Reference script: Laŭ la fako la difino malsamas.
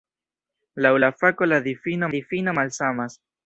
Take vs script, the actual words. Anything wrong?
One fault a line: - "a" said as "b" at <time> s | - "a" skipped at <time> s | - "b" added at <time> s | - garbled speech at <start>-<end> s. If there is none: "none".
- "difino" added at 2.1 s